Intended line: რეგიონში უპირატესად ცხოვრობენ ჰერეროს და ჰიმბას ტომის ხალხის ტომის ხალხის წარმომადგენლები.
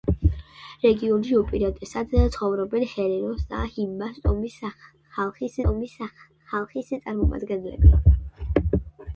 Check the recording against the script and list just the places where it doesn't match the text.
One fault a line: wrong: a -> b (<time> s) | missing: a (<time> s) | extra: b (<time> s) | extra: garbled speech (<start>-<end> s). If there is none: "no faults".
no faults